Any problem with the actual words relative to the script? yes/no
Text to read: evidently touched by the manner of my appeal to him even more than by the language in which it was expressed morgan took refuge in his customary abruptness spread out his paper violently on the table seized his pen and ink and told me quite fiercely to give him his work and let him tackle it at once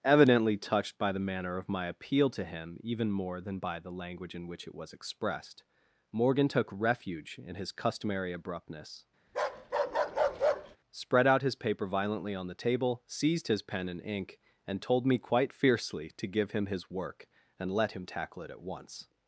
no